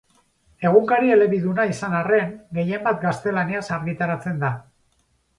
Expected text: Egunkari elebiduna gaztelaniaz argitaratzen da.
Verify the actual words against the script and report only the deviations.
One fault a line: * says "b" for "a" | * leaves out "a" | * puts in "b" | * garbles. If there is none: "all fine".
* puts in "izan arren gehienbat"